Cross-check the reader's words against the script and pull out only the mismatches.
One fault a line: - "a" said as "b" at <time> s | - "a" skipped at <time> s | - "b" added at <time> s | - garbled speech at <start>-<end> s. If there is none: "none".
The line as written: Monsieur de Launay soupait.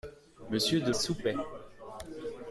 - "Launay" skipped at 0.9 s